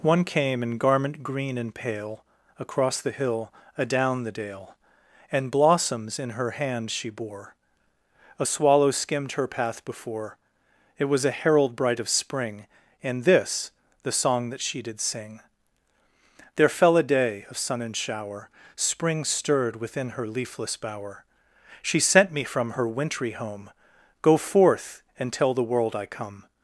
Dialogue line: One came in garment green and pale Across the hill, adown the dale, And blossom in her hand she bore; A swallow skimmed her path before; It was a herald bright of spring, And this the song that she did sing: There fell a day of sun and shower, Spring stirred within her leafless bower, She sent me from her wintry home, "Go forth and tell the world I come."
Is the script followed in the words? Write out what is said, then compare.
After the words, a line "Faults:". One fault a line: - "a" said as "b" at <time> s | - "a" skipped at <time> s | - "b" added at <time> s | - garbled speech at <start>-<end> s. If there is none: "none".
One came in garment green and pale Across the hill, adown the dale, And blossoms in her hand she bore; A swallow skimmed her path before; It was a herald bright of spring, And this the song that she did sing: There fell a day of sun and shower, Spring stirred within her leafless bower, She sent me from her wintry home, "Go forth and tell the world I come."
Faults:
- "blossom" said as "blossoms" at 5.5 s